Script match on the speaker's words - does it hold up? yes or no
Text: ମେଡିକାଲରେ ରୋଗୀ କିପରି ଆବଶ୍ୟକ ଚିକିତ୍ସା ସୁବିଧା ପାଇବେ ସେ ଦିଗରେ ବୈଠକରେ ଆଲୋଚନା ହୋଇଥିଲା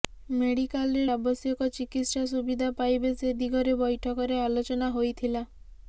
no